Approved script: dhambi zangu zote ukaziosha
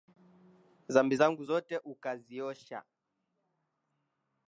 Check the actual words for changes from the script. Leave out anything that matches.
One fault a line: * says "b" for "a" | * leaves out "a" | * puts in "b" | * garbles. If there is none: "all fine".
all fine